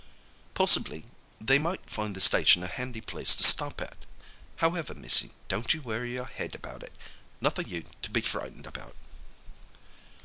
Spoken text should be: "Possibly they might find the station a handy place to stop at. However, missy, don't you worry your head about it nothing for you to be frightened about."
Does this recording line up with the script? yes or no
no